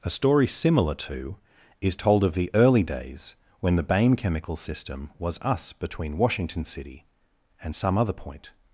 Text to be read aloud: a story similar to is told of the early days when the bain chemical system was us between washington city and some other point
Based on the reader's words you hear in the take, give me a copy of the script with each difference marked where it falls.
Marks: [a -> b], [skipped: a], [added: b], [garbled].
a story similar to is told of the early days when the bain chemical system was us between washington city and some other point